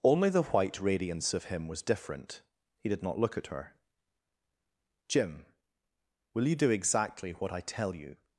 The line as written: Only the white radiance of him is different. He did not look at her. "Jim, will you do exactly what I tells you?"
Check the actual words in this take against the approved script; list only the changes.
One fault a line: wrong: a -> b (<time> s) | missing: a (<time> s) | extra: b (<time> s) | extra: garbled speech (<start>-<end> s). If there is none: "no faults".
wrong: is -> was (1.7 s)
wrong: tells -> tell (7.6 s)